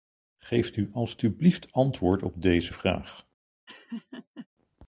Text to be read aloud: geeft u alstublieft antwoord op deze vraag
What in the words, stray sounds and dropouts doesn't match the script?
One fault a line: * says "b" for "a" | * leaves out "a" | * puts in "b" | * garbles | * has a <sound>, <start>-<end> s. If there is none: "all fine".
* has a laugh, 3.7-4.5 s